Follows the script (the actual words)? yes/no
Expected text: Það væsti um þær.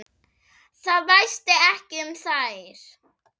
no